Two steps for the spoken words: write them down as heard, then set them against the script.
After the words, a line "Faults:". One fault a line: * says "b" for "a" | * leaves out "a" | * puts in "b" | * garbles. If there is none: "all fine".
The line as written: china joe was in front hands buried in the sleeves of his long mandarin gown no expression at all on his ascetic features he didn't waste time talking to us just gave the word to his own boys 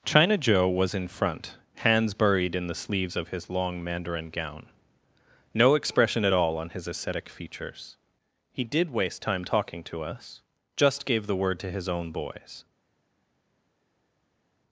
china joe was in front hands buried in the sleeves of his long mandarin gown no expression at all on his ascetic features he did waste time talking to us just gave the word to his own boys
Faults:
* says "did" for "didn't"